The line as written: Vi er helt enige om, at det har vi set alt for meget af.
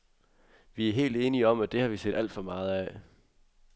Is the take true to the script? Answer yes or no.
yes